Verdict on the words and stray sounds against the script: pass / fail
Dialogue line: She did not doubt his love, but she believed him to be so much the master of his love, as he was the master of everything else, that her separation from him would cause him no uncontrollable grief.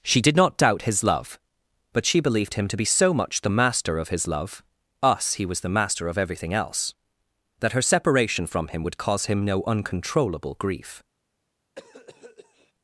fail